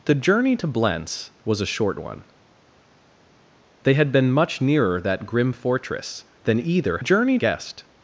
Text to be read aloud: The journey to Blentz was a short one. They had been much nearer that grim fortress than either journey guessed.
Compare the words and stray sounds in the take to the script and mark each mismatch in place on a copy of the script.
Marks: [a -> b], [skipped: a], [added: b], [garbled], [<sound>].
The journey to Blentz was a short one. They had been much nearer that grim fortress than either journey guessed.